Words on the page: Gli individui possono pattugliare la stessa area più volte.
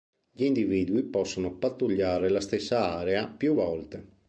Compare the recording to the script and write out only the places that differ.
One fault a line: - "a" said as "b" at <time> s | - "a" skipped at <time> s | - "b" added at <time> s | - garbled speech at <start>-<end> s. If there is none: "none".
none